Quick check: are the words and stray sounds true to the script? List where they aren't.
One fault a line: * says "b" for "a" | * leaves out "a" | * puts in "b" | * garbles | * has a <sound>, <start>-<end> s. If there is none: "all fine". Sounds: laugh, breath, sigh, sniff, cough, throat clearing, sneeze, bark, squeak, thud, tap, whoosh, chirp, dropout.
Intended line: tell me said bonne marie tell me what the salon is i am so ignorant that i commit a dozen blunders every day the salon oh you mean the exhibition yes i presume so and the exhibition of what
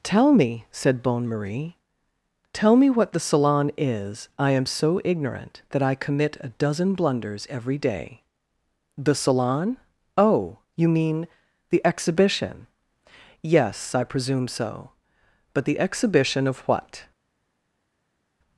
* says "but" for "and"